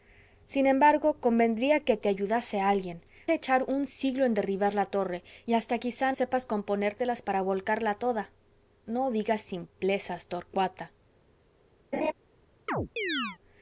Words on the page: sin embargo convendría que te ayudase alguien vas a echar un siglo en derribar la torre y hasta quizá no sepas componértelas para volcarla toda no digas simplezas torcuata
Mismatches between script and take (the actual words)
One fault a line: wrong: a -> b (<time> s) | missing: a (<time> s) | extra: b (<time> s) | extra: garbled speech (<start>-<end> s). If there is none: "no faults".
missing: vas (3.0 s)
missing: no (6.1 s)